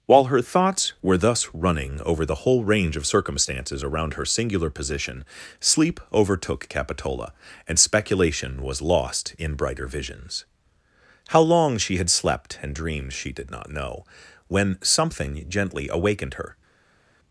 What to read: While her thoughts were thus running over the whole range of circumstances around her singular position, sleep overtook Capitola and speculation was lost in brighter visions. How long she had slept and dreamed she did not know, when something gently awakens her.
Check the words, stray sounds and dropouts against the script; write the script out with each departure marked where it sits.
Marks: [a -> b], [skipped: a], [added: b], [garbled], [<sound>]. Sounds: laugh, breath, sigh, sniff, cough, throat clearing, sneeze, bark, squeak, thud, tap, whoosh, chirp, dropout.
While her thoughts were thus running over the whole range of circumstances around her singular position, sleep overtook Capitola and speculation was lost in brighter visions. How long she had slept and dreamed she did not know, when something gently [awakens -> awakened] her.